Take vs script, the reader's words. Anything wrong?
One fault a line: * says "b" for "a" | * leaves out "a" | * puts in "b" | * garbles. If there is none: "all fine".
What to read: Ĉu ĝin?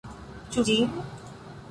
all fine